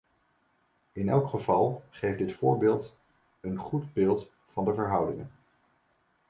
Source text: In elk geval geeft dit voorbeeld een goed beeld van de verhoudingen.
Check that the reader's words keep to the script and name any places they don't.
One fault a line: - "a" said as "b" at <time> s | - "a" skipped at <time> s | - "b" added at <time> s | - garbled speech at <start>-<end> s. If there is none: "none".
none